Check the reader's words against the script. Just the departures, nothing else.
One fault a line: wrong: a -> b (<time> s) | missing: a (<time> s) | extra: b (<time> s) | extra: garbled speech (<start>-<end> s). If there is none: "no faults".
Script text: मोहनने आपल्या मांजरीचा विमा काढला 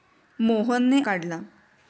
missing: आपल्या मांजरीचा विमा (1.0 s)